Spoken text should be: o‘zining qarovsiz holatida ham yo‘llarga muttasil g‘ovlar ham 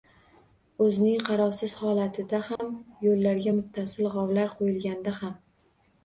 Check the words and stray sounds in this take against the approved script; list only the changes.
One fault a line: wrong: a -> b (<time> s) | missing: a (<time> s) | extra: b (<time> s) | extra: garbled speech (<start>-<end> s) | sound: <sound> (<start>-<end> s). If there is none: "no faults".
sound: dropout (2.6-2.6 s)
extra: qo‘yilganda (4.6 s)